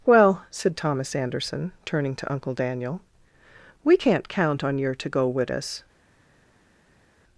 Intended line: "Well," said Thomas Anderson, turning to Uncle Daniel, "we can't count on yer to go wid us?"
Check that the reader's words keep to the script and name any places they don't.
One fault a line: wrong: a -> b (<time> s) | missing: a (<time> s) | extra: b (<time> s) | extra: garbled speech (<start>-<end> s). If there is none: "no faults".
no faults